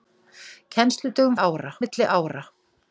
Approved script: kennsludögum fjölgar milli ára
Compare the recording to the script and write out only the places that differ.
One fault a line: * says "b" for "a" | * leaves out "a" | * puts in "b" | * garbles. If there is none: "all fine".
* says "ára" for "fjölgar"